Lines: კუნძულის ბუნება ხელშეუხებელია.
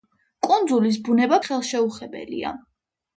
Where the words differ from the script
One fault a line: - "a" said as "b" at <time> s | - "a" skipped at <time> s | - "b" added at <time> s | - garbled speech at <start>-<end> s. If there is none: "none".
none